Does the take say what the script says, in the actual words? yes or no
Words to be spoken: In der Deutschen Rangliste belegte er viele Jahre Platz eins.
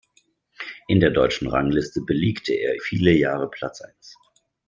yes